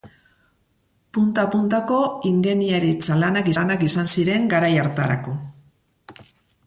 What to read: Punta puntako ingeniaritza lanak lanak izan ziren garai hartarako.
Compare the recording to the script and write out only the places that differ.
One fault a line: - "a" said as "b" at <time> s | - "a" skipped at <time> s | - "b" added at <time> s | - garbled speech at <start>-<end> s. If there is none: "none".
none